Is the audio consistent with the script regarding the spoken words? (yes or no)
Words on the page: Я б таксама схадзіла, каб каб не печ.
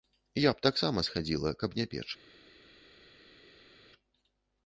no